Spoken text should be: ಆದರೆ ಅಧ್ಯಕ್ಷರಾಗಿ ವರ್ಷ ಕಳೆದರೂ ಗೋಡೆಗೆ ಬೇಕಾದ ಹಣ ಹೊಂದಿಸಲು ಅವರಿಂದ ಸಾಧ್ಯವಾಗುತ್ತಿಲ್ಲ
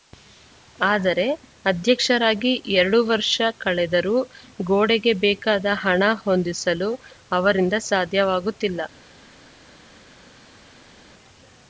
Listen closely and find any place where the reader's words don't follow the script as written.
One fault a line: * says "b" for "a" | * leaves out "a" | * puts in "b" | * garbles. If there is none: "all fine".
* puts in "ಎರಡು"